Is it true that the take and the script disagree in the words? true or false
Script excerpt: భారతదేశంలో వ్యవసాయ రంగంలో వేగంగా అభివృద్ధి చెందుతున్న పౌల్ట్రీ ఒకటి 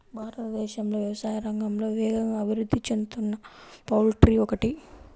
false